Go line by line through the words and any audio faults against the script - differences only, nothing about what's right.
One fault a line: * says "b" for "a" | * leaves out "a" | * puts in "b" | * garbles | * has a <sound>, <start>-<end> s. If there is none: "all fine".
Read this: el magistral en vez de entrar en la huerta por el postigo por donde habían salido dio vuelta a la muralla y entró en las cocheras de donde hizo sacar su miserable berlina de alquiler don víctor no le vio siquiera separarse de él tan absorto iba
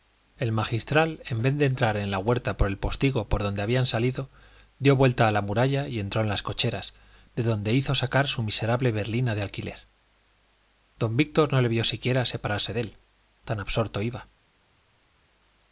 all fine